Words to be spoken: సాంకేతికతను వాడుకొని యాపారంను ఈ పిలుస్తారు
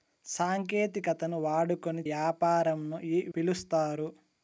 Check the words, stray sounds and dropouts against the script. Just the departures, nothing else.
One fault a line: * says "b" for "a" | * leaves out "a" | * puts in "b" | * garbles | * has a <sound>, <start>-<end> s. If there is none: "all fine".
all fine